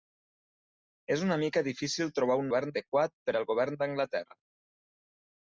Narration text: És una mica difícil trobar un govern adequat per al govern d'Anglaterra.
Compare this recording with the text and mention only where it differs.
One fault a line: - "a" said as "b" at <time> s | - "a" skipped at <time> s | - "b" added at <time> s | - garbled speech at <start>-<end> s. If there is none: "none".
none